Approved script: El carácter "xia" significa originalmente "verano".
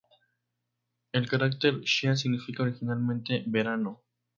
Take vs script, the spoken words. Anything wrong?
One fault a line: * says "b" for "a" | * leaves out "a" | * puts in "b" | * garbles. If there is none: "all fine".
all fine